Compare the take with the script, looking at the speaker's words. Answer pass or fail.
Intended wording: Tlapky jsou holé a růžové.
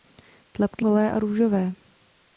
fail